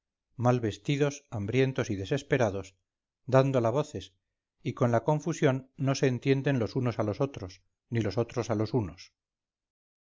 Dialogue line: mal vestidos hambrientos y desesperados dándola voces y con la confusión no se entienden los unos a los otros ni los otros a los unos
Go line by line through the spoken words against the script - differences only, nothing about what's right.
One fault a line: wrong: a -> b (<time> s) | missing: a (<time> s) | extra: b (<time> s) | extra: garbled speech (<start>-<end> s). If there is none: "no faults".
no faults